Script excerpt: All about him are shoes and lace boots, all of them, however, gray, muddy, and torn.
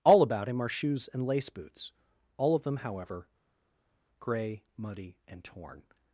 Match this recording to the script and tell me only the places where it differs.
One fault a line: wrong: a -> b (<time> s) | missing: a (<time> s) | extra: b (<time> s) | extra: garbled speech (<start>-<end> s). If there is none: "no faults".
no faults